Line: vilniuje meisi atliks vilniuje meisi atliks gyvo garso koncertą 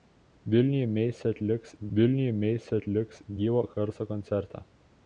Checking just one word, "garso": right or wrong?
right